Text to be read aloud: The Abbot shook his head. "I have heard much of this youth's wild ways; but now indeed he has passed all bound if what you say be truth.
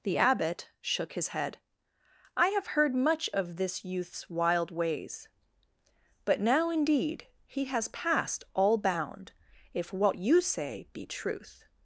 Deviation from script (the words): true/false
false